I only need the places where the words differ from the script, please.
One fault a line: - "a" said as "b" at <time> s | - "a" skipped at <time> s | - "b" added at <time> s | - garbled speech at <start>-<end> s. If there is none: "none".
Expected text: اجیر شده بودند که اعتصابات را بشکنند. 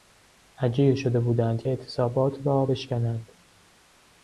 - "که" skipped at 1.6 s